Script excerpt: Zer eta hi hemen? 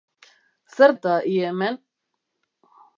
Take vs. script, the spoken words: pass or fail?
pass